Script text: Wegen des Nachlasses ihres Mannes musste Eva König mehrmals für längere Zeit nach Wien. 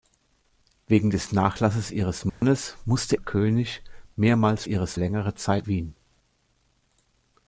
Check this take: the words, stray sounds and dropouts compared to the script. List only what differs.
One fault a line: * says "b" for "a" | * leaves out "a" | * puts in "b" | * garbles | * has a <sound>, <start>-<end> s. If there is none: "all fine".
* has a dropout, 2.3-2.4 s
* leaves out "Eva"
* says "ihres" for "für"
* leaves out "nach"